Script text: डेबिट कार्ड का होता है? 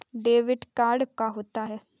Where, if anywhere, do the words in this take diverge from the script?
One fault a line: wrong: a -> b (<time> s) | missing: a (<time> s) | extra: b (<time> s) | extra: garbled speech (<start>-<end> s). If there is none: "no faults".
no faults